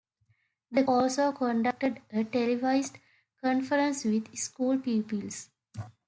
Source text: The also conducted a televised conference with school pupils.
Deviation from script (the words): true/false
false